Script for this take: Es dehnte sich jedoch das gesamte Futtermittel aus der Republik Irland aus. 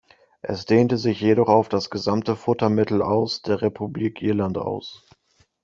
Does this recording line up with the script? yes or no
no